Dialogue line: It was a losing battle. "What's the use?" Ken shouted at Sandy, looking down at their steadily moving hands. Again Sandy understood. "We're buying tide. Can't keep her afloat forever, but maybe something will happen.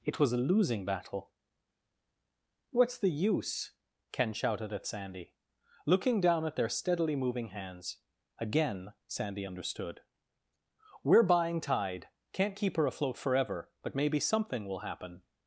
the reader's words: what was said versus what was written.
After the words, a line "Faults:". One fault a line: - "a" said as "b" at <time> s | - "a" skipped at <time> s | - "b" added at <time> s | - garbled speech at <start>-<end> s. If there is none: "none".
It was a losing battle. "What's the use?" Ken shouted at Sandy, looking down at their steadily moving hands. Again Sandy understood. "We're buying tide. Can't keep her afloat forever, but maybe something will happen.
Faults:
none